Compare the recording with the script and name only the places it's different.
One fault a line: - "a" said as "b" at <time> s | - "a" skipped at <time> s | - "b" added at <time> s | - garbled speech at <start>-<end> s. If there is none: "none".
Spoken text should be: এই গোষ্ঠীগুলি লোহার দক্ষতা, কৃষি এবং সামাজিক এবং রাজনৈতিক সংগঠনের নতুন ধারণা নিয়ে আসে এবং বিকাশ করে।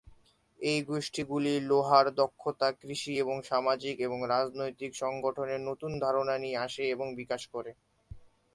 none